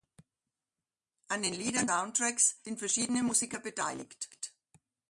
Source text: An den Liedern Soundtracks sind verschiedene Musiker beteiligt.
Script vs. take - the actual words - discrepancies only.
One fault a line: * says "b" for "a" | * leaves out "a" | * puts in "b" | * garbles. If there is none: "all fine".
all fine